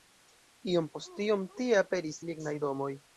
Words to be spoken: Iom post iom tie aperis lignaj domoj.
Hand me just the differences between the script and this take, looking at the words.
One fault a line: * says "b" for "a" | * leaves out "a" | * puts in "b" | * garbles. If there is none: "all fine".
all fine